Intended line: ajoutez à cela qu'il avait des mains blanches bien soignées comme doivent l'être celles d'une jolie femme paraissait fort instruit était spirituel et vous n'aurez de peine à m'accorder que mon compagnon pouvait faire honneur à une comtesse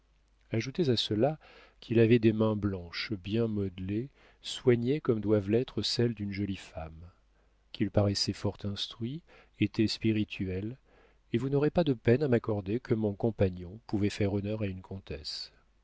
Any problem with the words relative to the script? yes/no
yes